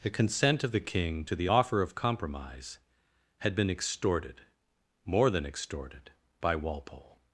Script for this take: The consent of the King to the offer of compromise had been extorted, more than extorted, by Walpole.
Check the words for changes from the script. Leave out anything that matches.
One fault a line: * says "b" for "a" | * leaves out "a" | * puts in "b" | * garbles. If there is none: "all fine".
all fine